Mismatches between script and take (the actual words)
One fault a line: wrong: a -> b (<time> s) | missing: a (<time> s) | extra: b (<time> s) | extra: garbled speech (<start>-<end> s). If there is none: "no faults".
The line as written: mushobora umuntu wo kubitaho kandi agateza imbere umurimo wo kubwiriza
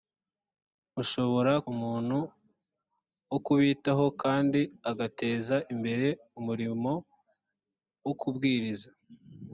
no faults